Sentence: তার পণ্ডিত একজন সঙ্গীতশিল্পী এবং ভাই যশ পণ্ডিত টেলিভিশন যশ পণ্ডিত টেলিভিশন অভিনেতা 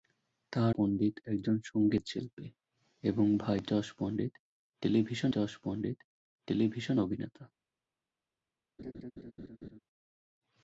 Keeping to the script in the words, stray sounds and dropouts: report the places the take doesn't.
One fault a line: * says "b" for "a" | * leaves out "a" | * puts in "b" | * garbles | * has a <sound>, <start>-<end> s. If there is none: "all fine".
* has a laugh, 8.8-9.8 s